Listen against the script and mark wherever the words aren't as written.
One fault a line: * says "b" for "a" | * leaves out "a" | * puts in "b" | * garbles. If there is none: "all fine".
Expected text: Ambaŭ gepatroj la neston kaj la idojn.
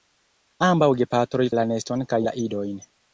all fine